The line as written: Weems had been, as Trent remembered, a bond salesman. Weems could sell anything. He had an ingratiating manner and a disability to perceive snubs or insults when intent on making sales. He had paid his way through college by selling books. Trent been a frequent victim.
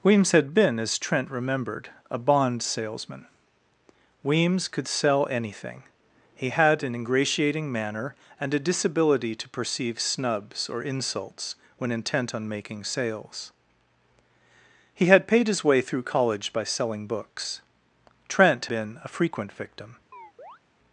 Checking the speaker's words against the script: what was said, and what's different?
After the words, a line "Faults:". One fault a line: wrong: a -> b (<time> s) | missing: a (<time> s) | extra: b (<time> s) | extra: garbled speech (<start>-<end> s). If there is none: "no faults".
Weems had been, as Trent remembered, a bond salesman. Weems could sell anything. He had an ingratiating manner and a disability to perceive snubs or insults when intent on making sales. He had paid his way through college by selling books. Trent been a frequent victim.
Faults:
no faults